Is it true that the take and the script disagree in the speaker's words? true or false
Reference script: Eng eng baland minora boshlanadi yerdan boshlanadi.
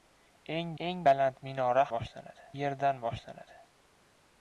false